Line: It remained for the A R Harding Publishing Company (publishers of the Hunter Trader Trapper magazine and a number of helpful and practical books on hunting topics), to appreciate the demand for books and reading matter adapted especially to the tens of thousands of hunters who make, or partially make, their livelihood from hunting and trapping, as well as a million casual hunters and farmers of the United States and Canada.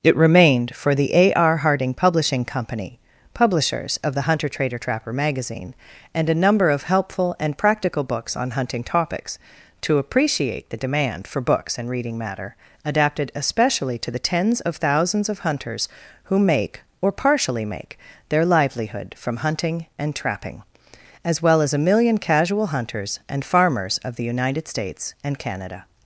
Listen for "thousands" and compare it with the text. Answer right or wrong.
right